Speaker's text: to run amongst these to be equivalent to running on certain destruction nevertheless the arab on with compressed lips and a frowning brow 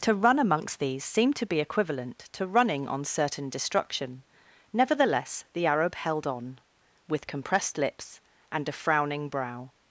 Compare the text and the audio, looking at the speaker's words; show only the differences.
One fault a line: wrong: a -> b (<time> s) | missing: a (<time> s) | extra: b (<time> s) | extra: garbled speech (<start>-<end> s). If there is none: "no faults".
extra: seemed (1.1 s)
extra: held (5.9 s)